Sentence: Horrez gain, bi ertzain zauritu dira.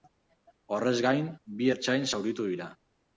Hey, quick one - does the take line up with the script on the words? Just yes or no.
yes